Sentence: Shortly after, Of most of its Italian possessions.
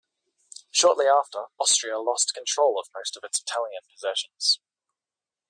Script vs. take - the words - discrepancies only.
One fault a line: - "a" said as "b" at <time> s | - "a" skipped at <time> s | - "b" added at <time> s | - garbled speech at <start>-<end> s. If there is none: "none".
- "Austria lost control" added at 1.6 s